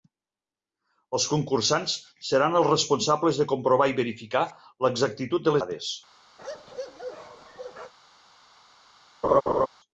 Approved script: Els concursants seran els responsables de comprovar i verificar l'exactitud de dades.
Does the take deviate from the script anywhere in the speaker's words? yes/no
no